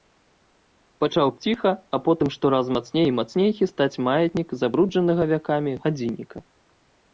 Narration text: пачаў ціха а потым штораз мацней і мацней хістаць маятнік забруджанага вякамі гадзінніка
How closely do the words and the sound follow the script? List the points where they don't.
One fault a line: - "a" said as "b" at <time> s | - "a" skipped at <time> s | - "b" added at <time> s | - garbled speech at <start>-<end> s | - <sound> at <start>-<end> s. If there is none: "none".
none